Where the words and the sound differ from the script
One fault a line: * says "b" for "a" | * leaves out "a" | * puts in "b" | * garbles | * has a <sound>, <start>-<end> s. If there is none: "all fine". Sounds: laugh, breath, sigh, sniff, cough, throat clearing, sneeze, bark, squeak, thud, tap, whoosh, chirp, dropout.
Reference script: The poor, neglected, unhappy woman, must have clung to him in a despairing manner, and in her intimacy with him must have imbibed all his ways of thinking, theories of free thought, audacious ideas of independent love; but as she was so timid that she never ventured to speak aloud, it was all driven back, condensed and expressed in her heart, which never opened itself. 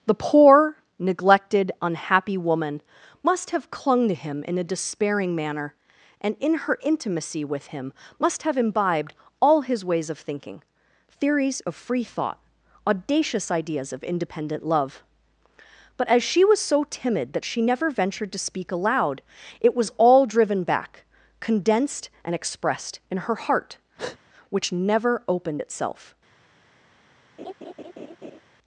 * has a breath, 24.0-24.2 s
* has a laugh, 27.4-28.4 s